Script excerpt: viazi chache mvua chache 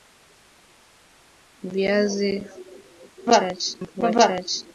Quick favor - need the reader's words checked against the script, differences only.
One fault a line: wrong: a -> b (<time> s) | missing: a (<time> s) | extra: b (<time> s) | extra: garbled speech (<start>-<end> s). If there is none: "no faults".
no faults